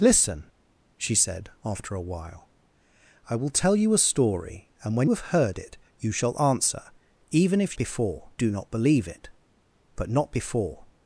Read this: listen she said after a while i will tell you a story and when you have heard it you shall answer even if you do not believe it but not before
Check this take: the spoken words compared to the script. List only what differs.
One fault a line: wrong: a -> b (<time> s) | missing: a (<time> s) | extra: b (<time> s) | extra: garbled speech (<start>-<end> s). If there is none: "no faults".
missing: you (5.1 s)
wrong: you -> before (7.7 s)